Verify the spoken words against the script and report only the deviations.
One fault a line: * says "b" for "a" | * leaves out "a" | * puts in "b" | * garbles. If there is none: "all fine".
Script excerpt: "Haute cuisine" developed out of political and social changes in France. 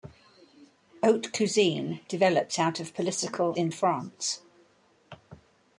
* leaves out "and social changes"